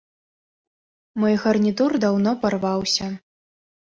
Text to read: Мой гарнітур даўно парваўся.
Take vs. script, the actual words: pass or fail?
pass